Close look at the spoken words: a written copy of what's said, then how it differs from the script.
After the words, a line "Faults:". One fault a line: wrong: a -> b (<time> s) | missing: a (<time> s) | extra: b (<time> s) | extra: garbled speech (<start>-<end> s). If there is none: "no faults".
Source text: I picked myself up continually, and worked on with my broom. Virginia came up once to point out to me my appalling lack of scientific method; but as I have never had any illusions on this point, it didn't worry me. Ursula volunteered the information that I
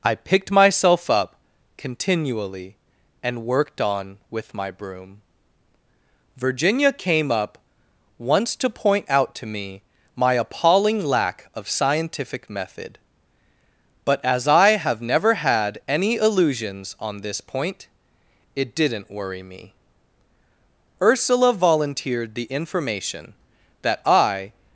I picked myself up continually, and worked on with my broom. Virginia came up once to point out to me my appalling lack of scientific method; but as I have never had any illusions on this point, it didn't worry me. Ursula volunteered the information that I
Faults:
no faults